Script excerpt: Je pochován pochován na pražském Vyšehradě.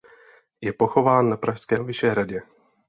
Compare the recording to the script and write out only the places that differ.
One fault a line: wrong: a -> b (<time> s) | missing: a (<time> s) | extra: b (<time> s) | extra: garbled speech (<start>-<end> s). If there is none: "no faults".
missing: pochován (1.3 s)